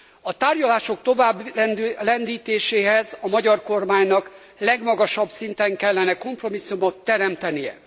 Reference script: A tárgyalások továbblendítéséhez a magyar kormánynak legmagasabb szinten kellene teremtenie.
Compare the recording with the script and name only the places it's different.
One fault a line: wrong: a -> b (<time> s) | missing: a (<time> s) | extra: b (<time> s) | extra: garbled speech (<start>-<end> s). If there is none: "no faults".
extra: kompromisszumot (6.2 s)